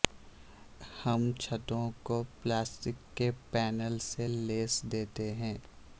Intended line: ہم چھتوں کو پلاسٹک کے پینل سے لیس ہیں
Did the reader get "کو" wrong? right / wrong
right